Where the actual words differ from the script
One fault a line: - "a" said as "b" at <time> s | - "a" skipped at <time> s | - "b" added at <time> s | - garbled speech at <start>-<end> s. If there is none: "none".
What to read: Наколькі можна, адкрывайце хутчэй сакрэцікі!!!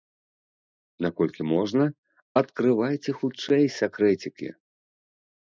none